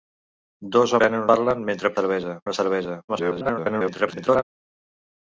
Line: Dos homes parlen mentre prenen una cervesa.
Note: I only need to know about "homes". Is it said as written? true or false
false